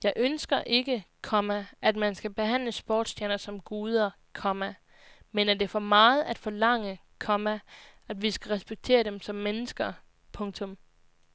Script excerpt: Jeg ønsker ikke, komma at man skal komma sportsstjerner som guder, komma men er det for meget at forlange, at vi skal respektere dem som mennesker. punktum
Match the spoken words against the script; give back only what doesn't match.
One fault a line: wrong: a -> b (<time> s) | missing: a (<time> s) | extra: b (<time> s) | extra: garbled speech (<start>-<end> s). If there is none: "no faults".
wrong: komma -> behandle (2.3 s)
extra: komma (7.2 s)